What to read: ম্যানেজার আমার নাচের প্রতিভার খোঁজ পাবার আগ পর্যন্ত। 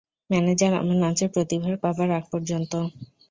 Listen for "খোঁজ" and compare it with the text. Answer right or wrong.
wrong